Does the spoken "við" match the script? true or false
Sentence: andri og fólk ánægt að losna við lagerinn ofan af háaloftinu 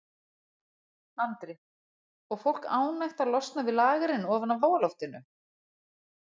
true